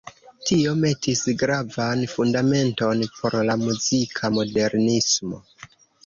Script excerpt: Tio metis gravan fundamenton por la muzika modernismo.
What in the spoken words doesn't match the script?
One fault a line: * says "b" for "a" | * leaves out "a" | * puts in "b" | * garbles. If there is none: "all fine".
all fine